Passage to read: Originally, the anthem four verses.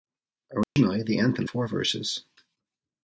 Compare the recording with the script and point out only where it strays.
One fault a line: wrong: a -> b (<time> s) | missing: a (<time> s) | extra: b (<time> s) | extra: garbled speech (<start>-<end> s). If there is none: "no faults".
no faults